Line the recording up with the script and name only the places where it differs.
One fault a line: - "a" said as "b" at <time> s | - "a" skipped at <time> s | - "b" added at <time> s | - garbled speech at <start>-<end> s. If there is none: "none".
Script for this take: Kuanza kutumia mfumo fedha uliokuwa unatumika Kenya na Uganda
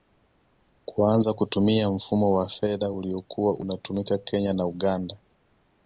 - "wa" added at 2.3 s